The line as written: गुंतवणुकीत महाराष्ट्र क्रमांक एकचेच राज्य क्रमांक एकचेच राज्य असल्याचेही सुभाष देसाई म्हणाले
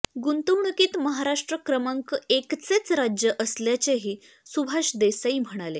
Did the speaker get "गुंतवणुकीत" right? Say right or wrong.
right